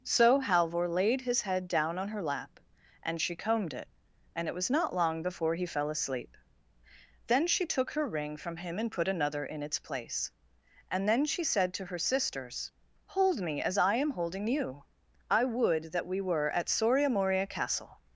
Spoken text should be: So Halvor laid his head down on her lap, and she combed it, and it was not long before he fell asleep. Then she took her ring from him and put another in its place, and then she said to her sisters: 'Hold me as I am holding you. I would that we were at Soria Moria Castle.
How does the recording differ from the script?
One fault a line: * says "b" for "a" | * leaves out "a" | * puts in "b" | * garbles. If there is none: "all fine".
all fine